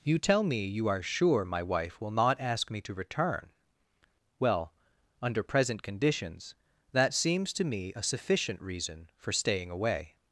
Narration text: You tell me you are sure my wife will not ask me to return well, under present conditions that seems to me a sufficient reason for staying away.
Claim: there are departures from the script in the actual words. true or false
false